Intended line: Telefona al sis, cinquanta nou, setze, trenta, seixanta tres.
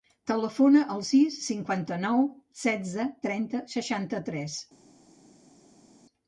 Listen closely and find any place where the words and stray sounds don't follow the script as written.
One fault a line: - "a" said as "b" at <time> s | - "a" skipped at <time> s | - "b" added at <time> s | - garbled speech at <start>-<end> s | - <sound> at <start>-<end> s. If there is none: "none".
none